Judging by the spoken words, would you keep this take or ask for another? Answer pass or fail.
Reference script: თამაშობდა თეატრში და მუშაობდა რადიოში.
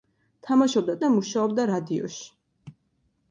fail